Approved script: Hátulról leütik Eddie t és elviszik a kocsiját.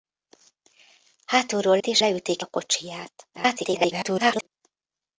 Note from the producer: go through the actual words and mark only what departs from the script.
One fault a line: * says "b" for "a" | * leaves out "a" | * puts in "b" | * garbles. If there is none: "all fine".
* leaves out "leütik Eddie"
* says "leütik" for "elviszik"
* garbles